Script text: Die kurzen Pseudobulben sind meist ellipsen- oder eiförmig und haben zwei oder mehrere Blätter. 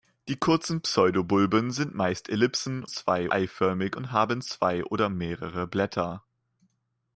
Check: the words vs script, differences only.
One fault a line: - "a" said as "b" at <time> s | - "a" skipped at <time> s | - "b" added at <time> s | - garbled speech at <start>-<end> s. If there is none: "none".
- "oder" said as "zwei" at 2.9 s